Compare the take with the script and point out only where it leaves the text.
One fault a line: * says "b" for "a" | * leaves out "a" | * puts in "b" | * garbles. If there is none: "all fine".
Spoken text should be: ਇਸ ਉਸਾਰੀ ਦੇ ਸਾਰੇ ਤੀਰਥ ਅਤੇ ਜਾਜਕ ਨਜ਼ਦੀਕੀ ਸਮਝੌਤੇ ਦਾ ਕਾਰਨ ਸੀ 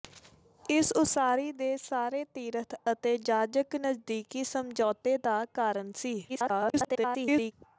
* garbles